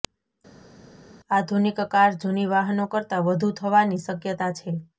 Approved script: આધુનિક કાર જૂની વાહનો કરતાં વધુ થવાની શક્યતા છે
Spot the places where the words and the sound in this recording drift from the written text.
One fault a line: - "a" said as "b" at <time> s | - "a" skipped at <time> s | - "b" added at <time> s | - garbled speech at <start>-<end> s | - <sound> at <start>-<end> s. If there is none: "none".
none